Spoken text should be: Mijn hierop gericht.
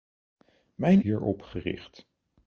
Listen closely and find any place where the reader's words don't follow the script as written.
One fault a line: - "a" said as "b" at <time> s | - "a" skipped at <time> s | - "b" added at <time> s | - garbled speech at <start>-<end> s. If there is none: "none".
none